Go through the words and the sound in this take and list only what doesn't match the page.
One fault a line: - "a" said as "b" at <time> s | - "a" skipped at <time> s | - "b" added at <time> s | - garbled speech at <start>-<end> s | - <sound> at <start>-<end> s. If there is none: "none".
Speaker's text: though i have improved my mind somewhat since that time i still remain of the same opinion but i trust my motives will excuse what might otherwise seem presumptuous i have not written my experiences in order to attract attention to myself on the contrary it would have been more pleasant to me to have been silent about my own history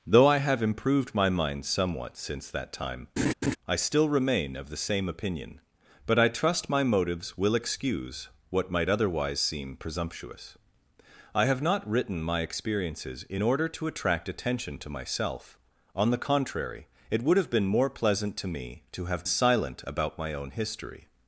- laugh at 3.2-3.6 s
- "been" skipped at 19.2 s